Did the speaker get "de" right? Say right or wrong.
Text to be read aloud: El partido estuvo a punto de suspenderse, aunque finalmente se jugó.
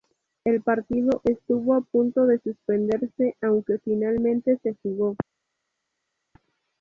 right